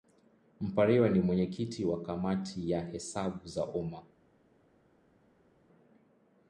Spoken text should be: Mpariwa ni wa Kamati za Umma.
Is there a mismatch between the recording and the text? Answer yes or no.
yes